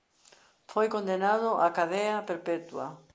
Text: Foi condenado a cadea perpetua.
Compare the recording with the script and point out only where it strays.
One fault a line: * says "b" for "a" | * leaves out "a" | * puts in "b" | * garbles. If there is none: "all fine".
all fine